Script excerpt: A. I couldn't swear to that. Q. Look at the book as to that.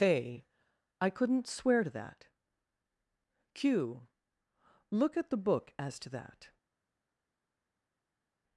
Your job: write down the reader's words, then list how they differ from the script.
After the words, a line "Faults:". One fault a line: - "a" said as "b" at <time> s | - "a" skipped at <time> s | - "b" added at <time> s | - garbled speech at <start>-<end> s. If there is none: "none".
A. I couldn't swear to that. Q. Look at the book as to that.
Faults:
none